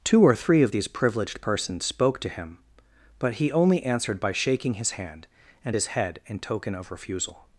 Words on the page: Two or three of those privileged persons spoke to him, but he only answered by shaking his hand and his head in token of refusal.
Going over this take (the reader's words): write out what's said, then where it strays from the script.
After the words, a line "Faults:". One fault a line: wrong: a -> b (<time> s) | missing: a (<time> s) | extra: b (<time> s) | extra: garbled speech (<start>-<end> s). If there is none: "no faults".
Two or three of these privileged persons spoke to him, but he only answered by shaking his hand and his head in token of refusal.
Faults:
wrong: those -> these (0.7 s)